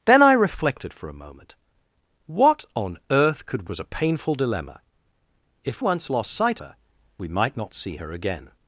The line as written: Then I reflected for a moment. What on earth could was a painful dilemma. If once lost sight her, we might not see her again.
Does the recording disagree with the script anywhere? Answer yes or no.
no